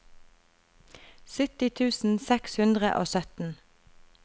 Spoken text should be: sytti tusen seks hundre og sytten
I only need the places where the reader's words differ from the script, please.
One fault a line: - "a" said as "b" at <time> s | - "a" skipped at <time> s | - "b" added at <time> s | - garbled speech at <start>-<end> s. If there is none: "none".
none